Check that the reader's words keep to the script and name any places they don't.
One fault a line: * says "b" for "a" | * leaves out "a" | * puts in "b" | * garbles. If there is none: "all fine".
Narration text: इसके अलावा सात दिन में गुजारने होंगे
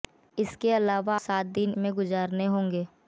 all fine